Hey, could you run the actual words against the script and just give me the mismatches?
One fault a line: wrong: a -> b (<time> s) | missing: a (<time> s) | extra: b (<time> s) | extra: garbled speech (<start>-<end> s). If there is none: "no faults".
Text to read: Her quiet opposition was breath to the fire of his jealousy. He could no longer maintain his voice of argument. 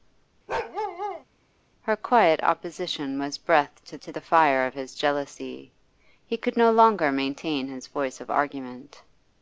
extra: to (4.0 s)